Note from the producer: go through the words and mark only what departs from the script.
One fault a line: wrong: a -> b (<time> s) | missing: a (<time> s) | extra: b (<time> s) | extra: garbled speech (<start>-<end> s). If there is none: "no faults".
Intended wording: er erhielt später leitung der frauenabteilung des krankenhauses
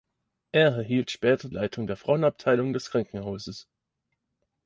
no faults